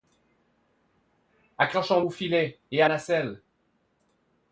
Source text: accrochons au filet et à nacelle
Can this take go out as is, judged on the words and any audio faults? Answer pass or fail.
pass